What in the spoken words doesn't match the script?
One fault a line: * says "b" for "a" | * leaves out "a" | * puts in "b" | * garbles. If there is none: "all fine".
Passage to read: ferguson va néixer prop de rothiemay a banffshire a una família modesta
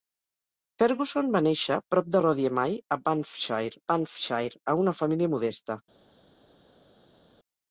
* puts in "banffshire"